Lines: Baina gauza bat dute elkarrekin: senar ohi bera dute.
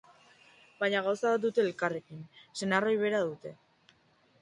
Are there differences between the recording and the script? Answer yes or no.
no